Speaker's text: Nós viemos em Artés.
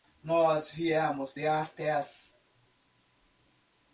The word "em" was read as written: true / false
false